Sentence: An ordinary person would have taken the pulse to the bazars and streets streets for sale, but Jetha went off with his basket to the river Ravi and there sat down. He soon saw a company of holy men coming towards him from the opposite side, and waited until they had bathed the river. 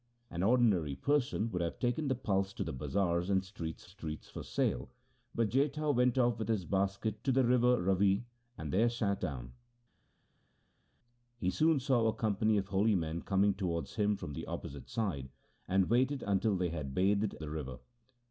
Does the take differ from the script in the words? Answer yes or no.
no